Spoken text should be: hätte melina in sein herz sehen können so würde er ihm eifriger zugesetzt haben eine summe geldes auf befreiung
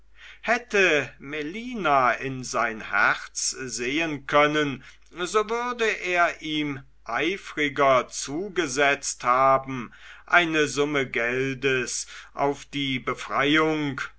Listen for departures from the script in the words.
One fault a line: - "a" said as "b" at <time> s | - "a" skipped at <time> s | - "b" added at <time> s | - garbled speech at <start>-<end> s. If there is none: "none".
- "die" added at 12.6 s